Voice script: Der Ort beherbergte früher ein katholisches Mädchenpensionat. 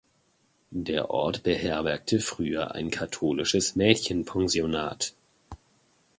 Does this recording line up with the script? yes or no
yes